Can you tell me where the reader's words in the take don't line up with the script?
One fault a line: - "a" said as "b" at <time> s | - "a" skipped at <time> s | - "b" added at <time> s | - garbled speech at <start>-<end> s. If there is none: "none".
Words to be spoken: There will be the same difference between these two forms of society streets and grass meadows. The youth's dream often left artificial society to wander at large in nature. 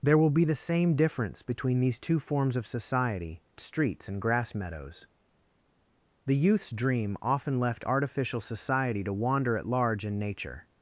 none